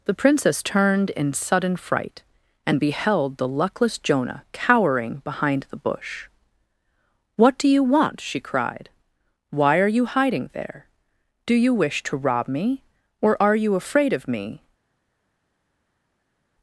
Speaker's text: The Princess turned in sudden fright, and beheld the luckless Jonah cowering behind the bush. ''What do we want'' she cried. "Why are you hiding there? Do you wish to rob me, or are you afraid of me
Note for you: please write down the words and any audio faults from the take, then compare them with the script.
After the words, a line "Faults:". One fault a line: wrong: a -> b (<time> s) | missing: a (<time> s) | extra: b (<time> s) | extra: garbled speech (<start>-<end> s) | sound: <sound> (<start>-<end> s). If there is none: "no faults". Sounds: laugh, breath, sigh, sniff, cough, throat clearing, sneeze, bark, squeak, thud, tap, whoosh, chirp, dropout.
The Princess turned in sudden fright, and beheld the luckless Jonah cowering behind the bush. ''What do you want'' she cried. "Why are you hiding there? Do you wish to rob me, or are you afraid of me
Faults:
wrong: we -> you (7.7 s)